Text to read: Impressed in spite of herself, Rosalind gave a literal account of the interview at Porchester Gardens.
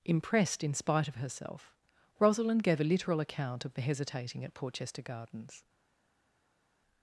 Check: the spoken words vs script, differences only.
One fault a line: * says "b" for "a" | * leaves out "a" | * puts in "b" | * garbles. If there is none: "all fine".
* says "hesitating" for "interview"